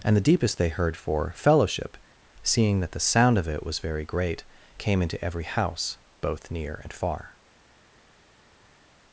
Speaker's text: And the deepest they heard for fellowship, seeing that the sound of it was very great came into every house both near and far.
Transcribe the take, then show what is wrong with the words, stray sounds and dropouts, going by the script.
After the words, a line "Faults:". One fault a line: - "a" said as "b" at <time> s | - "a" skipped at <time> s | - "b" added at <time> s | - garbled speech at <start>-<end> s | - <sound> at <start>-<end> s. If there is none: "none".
And the deepest they heard for fellowship, seeing that the sound of it was very great came into every house both near and far.
Faults:
none